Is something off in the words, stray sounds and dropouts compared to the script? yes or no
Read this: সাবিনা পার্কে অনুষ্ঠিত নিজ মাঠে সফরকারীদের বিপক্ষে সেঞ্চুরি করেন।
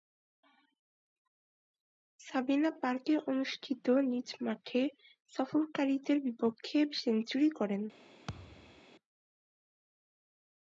yes